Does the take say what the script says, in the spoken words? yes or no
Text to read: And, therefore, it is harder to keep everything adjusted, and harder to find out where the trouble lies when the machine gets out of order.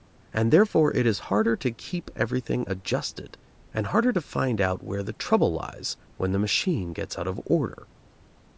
yes